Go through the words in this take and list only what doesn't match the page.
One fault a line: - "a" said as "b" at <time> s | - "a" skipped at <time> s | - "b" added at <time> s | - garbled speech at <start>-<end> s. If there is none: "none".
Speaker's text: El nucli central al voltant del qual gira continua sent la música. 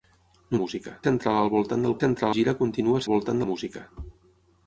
- "nucli" said as "música" at 0.6 s
- "qual" said as "central" at 2.0 s
- "sent" said as "voltant" at 3.1 s